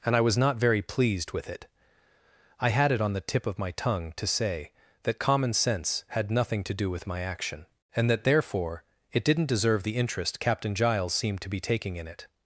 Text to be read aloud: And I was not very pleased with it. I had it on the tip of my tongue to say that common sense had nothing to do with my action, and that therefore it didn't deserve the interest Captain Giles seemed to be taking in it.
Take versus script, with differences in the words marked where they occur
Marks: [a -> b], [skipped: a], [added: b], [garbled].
And I was not very pleased with it. I had it on the tip of my tongue to say that common sense had nothing to do with my action, and that therefore it didn't deserve the interest Captain Giles seemed to be taking in it.